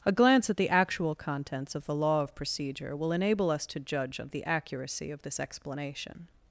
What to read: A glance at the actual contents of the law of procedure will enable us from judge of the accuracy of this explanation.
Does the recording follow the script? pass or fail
fail